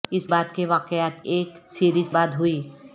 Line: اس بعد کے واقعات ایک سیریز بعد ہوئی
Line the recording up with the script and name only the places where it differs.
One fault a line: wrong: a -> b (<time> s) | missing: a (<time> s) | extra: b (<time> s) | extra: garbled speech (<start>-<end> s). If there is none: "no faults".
no faults